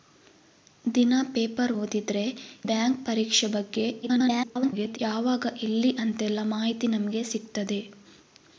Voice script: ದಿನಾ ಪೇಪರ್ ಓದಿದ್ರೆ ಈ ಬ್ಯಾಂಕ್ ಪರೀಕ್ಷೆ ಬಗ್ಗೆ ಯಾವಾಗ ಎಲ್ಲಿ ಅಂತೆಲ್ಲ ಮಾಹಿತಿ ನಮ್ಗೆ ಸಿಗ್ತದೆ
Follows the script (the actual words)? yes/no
no